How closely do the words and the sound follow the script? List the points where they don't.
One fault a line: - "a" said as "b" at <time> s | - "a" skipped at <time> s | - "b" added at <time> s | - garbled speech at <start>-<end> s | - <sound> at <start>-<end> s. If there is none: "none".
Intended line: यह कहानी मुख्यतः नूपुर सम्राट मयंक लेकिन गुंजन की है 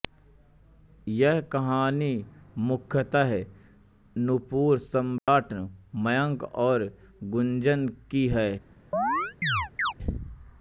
- dropout at 5.2-5.3 s
- "लेकिन" said as "और" at 6.7 s
- chirp at 8.9-9.9 s